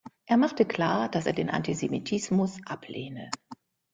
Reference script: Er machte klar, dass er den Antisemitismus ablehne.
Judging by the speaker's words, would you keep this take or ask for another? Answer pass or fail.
pass